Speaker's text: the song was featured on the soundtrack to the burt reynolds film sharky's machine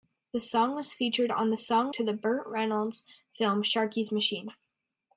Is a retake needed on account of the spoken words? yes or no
yes